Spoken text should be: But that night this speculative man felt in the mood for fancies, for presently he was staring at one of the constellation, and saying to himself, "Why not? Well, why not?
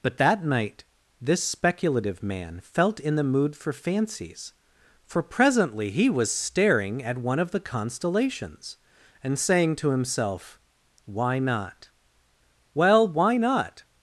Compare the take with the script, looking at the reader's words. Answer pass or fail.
fail